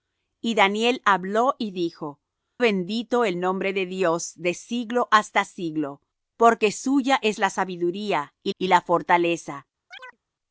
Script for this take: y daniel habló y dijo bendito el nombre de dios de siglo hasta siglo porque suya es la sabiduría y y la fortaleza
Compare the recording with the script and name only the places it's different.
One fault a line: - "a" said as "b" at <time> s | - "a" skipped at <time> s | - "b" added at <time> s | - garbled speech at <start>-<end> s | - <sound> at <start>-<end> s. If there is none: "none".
- chirp at 9.9-10.2 s